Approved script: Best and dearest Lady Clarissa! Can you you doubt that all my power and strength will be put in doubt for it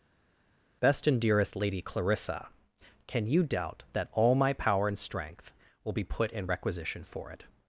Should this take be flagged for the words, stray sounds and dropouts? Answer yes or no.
yes